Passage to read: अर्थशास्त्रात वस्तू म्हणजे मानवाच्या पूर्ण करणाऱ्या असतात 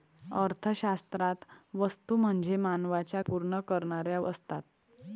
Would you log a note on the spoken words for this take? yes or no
no